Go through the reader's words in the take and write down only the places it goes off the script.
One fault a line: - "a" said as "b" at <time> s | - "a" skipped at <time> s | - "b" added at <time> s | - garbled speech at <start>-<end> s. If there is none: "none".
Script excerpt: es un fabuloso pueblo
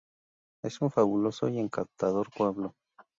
- "y encantador" added at 1.5 s